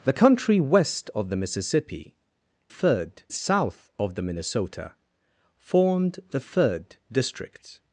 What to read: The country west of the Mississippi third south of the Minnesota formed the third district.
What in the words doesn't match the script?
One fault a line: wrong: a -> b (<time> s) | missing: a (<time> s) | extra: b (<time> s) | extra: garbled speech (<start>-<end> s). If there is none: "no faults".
no faults